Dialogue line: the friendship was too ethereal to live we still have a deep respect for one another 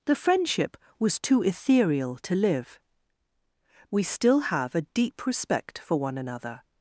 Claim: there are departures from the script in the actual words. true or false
false